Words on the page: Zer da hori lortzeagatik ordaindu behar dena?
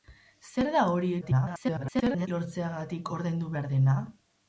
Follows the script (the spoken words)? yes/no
no